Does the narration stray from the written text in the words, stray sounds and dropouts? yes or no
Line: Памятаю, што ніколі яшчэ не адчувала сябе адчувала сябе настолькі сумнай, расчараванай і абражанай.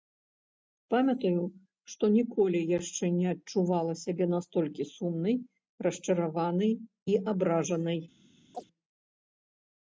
yes